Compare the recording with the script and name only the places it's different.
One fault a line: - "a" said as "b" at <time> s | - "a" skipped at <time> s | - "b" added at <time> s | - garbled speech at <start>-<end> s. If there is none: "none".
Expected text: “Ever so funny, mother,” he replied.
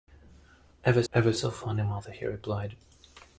- "ever" added at 1.1 s